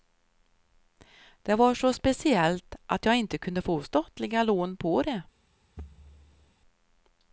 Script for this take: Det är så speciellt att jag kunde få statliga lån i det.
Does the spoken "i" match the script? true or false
false